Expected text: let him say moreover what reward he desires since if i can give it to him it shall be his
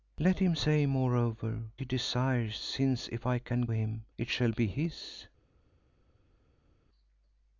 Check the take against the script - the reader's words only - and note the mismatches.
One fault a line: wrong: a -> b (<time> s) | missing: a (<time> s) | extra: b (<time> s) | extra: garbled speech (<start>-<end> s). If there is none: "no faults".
missing: what reward (1.6 s)
missing: give it to (3.7 s)